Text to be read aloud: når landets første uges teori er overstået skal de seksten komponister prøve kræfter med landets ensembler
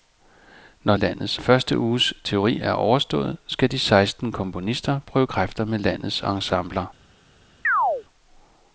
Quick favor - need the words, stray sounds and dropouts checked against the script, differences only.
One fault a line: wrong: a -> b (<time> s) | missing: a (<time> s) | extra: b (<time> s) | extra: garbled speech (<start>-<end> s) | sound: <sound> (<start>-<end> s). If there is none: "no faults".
sound: chirp (7.6-8.0 s)